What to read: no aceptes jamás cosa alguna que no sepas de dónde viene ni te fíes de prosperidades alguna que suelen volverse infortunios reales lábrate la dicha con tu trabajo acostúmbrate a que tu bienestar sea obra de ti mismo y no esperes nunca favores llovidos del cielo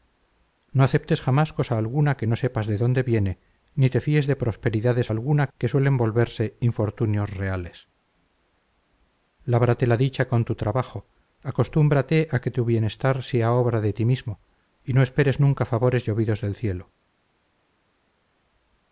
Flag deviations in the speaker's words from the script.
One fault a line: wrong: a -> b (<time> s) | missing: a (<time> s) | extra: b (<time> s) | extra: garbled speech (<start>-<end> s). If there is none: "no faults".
no faults